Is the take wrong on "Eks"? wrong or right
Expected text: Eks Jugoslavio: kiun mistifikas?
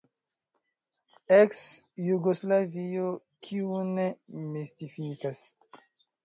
right